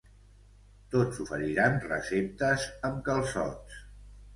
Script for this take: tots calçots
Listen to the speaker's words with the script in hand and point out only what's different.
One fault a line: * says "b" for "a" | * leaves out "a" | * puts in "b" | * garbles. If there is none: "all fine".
* puts in "oferiran receptes amb"